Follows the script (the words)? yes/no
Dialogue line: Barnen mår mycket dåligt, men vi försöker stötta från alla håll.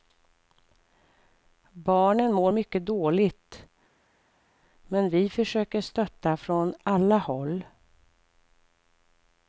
yes